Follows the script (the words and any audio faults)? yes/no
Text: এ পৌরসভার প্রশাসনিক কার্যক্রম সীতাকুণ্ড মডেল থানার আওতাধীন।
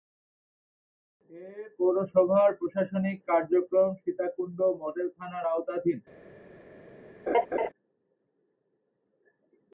no